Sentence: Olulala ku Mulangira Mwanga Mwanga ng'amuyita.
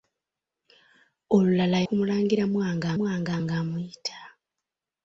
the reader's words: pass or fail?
pass